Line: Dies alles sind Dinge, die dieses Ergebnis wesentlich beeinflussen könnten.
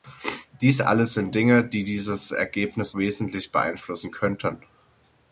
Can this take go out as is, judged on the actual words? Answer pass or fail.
pass